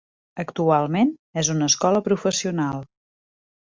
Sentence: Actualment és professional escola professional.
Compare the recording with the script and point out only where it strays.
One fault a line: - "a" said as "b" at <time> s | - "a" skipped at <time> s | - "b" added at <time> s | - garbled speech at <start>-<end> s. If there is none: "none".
- "professional" said as "una" at 1.6 s